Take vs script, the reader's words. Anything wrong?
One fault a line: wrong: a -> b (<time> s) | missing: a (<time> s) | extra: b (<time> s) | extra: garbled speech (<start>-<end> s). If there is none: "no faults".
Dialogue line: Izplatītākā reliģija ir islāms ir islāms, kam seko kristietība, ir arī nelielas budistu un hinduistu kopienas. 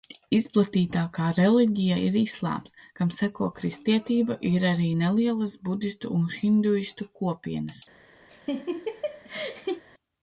missing: ir islāms (2.7 s)